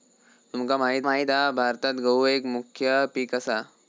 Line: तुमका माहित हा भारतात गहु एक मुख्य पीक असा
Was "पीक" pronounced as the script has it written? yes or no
yes